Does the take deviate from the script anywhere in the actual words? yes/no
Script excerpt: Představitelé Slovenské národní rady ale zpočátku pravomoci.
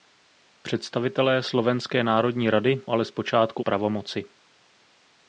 no